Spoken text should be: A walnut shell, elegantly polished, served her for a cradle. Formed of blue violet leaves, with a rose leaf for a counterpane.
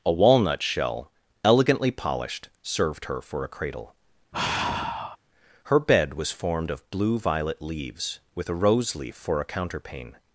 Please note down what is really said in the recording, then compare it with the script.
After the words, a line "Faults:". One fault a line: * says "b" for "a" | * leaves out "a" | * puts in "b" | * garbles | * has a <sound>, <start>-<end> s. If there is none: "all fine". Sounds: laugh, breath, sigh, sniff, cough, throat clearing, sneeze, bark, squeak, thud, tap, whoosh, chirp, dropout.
A walnut shell, elegantly polished, served her for a cradle. Her bed was formed of blue violet leaves, with a rose leaf for a counterpane.
Faults:
* has a sigh, 4.3-5.2 s
* puts in "Her bed was"